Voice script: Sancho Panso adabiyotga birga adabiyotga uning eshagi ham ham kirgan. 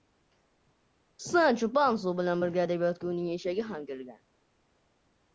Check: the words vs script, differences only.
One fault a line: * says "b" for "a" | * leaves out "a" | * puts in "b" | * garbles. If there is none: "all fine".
* says "bilan" for "adabiyotga"
* leaves out "ham"